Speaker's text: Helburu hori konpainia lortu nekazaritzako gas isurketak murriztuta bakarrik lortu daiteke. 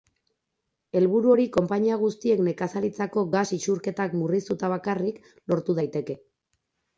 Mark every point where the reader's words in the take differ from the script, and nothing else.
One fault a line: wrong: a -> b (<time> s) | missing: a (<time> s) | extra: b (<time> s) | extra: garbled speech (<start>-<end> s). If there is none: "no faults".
wrong: lortu -> guztiek (2.0 s)